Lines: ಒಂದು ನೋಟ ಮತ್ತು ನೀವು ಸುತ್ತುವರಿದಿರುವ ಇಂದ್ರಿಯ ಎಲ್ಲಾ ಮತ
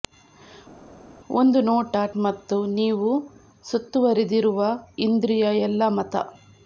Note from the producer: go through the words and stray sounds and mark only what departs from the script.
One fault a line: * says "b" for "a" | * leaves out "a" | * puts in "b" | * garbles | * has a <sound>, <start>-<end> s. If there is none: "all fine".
all fine